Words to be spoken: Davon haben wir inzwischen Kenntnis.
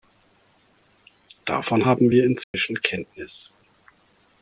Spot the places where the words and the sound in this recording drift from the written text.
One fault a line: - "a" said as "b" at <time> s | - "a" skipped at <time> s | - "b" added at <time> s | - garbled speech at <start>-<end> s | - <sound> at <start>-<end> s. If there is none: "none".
- dropout at 2.4-2.5 s